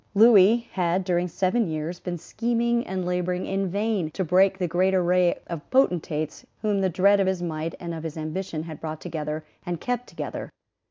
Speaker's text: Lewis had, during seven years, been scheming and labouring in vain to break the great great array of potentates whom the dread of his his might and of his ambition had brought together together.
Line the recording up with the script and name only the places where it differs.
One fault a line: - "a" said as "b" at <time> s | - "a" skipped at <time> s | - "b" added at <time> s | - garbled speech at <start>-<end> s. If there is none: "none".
- "great" skipped at 5.0 s
- "his" skipped at 7.4 s
- "and kept" added at 9.7 s